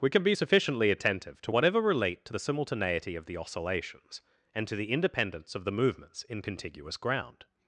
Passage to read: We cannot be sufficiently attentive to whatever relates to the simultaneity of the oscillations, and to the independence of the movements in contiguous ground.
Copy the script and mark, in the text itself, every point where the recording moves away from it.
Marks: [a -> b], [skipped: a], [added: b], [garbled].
We [cannot -> can] be sufficiently attentive to whatever [relates -> relate] to the simultaneity of the oscillations, and to the independence of the movements in contiguous ground.